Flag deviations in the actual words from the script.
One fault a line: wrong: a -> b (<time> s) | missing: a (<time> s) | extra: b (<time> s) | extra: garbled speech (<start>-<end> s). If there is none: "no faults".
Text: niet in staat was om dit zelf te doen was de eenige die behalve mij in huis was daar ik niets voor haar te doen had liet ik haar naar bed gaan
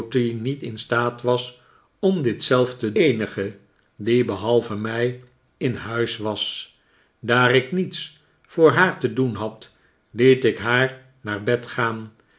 missing: doen was de (2.9 s)